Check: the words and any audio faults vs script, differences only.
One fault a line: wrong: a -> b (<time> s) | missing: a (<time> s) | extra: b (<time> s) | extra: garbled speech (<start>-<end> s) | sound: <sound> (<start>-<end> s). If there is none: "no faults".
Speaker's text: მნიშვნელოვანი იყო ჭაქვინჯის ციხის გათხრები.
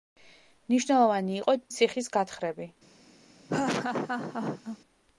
missing: ჭაქვინჯის (1.6 s)
sound: laugh (3.5-4.8 s)